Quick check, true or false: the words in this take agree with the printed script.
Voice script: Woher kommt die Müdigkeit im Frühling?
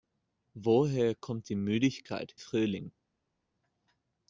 false